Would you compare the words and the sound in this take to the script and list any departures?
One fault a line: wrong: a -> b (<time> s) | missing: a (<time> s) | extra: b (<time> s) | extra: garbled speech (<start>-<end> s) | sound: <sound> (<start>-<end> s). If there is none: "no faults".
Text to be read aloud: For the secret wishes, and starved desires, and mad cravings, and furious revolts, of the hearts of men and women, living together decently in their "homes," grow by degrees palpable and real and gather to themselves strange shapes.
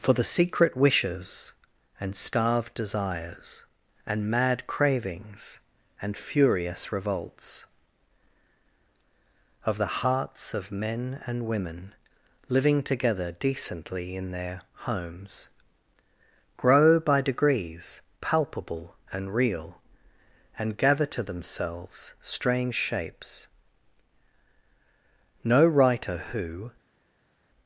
extra: No writer who (25.4 s)